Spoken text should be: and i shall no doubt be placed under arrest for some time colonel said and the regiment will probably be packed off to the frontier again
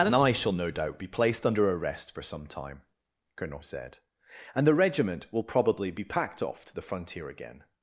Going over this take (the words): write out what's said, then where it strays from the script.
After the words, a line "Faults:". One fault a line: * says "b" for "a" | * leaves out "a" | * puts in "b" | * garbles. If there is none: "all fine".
and i shall no doubt be placed under arrest for some time colonel said and the regiment will probably be packed off to the frontier again
Faults:
all fine